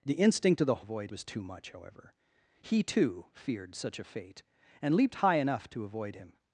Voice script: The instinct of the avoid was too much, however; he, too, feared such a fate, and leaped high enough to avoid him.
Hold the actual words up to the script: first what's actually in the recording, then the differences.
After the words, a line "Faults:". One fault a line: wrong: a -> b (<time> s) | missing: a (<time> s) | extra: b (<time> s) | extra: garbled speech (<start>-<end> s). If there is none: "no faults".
The instinct of the avoid was too much, however; he, too, feared such a fate, and leaped high enough to avoid him.
Faults:
no faults